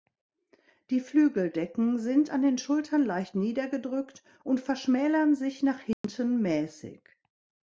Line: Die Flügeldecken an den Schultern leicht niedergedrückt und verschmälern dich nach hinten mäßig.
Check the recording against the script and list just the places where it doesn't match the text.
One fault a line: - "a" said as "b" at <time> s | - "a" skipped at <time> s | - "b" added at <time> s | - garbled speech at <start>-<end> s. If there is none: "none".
- "sind" added at 2.0 s
- "dich" said as "sich" at 5.3 s